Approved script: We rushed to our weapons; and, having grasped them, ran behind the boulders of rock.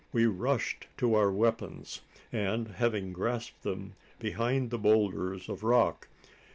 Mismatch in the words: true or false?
true